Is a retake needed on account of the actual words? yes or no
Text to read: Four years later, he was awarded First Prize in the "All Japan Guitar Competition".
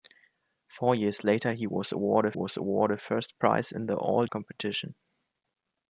yes